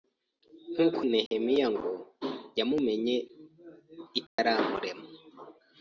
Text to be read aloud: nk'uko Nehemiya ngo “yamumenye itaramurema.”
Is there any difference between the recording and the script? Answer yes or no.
no